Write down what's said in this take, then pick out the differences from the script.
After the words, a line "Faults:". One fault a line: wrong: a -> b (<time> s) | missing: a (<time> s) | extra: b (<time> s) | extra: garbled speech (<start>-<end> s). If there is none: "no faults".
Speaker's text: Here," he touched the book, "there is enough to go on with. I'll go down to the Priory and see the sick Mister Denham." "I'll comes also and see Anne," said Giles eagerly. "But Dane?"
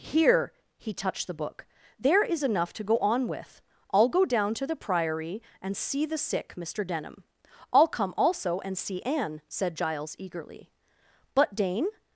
Here," he touched the book, "there is enough to go on with. I'll go down to the Priory and see the sick Mister Denham." "I'll come also and see Anne," said Giles eagerly. "But Dane?"
Faults:
wrong: comes -> come (7.9 s)